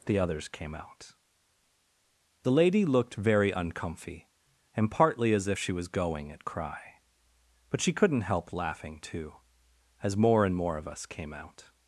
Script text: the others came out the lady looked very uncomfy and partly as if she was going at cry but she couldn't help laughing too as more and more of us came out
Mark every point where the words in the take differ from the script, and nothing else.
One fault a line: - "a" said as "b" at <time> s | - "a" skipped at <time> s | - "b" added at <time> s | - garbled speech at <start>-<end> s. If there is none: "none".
none